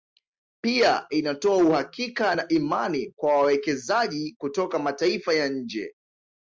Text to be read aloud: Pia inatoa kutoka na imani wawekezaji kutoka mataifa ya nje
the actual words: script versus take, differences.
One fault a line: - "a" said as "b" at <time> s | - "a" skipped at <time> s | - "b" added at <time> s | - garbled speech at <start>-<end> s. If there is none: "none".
- "kutoka" said as "uhakika" at 1.6 s
- "kwa" added at 3.1 s